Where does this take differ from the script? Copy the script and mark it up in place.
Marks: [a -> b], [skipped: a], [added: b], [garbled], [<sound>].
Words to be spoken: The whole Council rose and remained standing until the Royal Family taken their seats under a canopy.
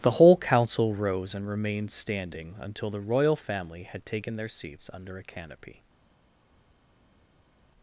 The whole Council rose and remained standing until the Royal Family [added: had] taken their seats under a canopy.